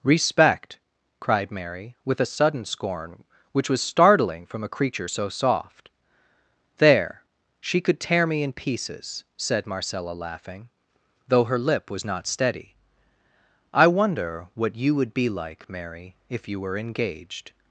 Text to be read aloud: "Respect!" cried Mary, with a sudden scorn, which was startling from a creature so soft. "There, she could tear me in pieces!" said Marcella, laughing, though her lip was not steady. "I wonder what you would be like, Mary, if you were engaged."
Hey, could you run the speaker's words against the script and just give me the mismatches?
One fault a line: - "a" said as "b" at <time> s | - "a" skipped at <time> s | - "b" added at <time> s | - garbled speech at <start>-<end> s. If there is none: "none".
none